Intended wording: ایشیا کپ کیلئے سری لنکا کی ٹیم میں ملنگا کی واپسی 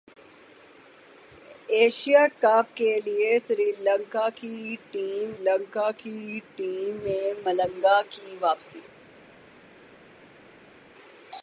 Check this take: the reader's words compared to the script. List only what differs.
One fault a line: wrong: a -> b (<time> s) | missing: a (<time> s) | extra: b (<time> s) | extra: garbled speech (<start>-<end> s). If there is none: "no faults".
extra: لنکا کی ٹیم (5.4 s)